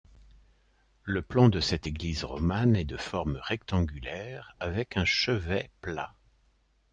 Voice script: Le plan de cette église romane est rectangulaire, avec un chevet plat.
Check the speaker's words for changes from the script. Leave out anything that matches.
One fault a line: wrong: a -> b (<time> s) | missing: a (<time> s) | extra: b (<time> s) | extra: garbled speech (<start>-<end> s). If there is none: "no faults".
extra: de forme (2.8 s)